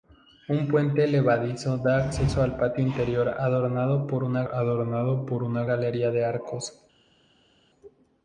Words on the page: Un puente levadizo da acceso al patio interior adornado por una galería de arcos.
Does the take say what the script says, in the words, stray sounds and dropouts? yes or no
no